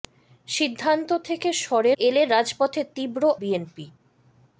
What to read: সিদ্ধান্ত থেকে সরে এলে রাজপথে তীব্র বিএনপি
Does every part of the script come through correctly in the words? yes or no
yes